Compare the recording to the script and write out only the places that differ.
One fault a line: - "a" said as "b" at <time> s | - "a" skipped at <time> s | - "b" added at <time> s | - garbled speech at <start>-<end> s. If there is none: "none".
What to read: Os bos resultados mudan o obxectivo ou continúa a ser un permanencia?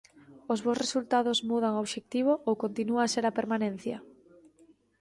- "un" said as "a" at 3.3 s